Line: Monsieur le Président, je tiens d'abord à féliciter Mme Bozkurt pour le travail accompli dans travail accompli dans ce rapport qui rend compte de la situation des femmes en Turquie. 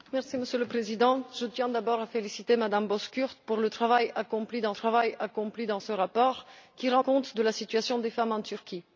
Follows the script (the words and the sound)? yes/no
yes